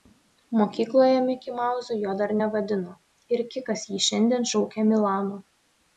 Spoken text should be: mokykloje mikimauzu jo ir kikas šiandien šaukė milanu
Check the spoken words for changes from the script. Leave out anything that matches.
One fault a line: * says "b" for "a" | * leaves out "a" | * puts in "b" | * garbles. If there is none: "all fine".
* puts in "dar nevadino"
* puts in "jį"